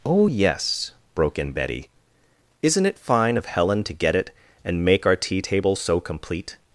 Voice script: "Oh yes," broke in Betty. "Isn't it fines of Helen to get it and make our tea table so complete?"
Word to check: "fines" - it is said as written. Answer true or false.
false